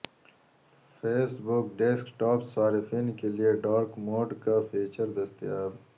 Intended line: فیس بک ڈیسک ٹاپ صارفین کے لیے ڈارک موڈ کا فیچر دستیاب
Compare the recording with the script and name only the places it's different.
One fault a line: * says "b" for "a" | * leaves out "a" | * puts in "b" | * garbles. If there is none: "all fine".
all fine